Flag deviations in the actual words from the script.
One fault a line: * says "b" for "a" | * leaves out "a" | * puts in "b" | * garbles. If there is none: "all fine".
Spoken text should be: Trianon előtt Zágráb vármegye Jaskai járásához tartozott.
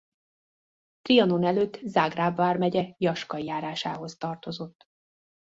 all fine